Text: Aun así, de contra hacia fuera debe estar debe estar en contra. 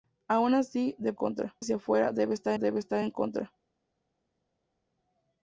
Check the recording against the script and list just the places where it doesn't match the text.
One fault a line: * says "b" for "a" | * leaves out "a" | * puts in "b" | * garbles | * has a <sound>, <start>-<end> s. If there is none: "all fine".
all fine